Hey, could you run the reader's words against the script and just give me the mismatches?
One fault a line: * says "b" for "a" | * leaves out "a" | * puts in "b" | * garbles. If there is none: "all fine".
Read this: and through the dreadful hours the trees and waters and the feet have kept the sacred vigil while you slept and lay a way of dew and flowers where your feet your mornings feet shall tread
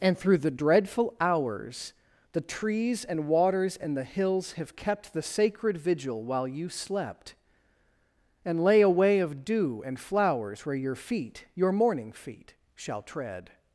* says "hills" for "feet"
* says "morning" for "mornings"